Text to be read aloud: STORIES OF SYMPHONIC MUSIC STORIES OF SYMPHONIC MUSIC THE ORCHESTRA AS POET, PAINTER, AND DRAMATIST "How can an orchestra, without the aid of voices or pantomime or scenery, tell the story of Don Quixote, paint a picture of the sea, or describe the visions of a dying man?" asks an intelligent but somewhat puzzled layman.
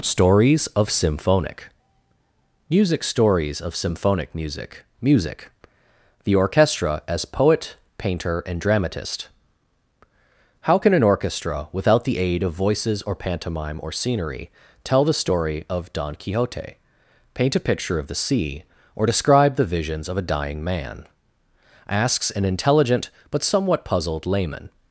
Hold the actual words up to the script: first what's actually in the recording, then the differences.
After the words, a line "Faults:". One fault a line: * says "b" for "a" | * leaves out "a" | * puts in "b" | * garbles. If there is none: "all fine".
STORIES OF SYMPHONIC MUSIC STORIES OF SYMPHONIC MUSIC music THE ORCHESTRA AS POET, PAINTER, AND DRAMATIST "How can an orchestra, without the aid of voices or pantomime or scenery, tell the story of Don Quixote, paint a picture of the sea, or describe the visions of a dying man?" asks an intelligent but somewhat puzzled layman.
Faults:
* puts in "music"